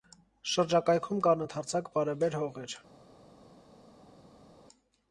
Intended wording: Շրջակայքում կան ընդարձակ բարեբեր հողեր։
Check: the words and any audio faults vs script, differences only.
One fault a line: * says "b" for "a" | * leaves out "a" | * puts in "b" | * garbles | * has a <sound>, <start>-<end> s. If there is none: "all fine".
all fine